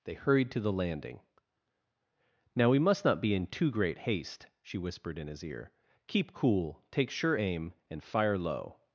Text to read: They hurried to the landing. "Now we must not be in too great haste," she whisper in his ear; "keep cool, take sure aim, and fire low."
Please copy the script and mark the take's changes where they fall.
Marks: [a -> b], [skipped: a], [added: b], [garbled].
They hurried to the landing. "Now we must not be in too great haste," she [whisper -> whispered] in his ear; "keep cool, take sure aim, and fire low."